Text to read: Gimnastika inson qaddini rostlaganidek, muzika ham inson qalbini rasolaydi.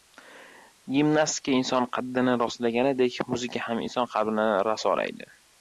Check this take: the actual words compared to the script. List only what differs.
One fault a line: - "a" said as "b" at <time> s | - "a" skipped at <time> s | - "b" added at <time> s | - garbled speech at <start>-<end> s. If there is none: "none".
none